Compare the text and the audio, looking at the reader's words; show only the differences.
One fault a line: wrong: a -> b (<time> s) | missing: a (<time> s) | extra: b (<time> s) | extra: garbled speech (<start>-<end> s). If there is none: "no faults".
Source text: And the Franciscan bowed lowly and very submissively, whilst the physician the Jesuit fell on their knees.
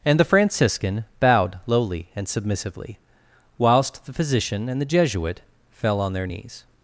missing: very (2.3 s)
extra: and (4.7 s)